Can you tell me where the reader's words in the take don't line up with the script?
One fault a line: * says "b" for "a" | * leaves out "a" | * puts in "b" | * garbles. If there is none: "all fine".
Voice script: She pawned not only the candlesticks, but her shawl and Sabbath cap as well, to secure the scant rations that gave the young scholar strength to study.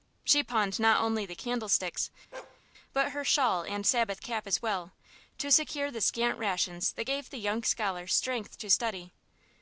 all fine